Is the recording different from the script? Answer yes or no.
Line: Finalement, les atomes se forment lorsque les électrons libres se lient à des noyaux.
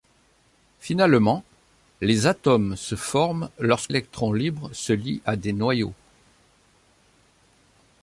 yes